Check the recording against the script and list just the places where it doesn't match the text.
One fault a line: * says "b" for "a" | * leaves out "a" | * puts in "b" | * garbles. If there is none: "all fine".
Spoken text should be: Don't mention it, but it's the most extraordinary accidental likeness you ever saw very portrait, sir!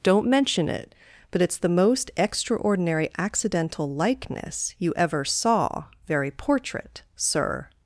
all fine